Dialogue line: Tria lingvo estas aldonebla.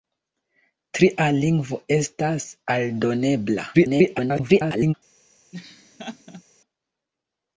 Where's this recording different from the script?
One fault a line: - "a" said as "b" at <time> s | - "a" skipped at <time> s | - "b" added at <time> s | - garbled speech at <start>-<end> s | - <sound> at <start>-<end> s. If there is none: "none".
- garbled speech at 3.7-4.9 s
- laugh at 5.5-6.4 s